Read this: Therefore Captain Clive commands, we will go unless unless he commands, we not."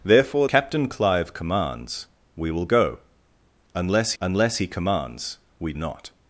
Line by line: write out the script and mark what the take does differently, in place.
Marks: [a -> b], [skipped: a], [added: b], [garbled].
Therefore Captain Clive commands, we will go unless unless he commands, we not."